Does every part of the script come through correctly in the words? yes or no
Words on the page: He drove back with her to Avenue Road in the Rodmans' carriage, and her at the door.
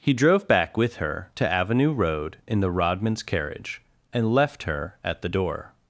no